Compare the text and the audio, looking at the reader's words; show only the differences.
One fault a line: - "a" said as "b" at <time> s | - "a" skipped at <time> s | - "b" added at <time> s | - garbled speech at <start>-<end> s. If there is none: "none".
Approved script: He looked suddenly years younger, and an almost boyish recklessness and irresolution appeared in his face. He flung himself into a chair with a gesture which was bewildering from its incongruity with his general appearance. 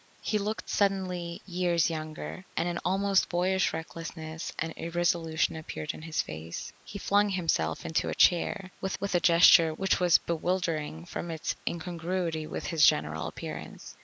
- "with" added at 9.0 s